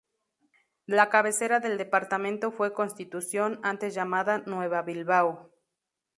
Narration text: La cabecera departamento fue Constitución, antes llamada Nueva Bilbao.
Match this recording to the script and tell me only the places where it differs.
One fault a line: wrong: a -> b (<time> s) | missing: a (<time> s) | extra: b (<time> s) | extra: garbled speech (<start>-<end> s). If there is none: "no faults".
extra: del (1.6 s)